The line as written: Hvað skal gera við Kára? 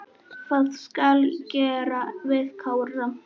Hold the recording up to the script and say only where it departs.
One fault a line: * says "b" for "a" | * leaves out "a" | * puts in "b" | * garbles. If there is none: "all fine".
all fine